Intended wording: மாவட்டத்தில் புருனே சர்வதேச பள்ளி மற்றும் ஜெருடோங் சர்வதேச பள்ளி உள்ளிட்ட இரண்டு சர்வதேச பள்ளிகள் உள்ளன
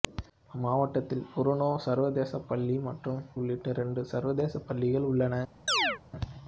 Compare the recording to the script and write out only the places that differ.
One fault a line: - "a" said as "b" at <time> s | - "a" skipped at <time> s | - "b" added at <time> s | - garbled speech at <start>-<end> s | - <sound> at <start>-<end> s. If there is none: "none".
- "ஜெருடோங் சர்வதேச பள்ளி" skipped at 3.2 s
- chirp at 5.7-6.0 s